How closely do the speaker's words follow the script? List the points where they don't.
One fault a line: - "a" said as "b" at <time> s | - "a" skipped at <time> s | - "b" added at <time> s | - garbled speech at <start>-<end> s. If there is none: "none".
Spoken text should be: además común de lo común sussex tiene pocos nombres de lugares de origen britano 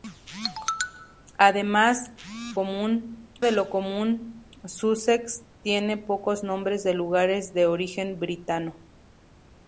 none